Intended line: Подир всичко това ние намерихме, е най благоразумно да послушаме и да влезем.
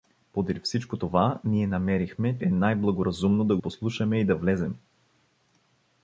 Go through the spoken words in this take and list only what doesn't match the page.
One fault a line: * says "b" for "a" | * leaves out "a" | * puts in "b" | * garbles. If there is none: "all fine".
all fine